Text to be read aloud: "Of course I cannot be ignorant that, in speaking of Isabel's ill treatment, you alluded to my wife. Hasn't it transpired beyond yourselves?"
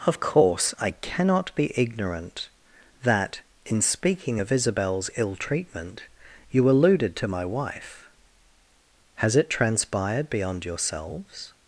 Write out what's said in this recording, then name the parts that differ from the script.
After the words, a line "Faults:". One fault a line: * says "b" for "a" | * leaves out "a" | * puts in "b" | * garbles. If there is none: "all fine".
"Of course I cannot be ignorant that, in speaking of Isabel's ill treatment, you alluded to my wife. Has it transpired beyond yourselves?"
Faults:
* says "Has" for "Hasn't"